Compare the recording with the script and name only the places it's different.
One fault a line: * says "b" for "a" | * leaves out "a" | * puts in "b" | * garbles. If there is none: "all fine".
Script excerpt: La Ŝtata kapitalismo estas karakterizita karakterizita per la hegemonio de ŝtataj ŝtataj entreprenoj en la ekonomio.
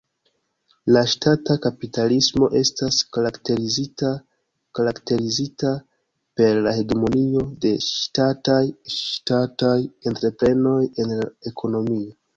all fine